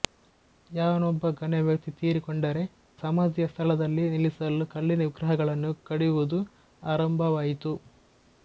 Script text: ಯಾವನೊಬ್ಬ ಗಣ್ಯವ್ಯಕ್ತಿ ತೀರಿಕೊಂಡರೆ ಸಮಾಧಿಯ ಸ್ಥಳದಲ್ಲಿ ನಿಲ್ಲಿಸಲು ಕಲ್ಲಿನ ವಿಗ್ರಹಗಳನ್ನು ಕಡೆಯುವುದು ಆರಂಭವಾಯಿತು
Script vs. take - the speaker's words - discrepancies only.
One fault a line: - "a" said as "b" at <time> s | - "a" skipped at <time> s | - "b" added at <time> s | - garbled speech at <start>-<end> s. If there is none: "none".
none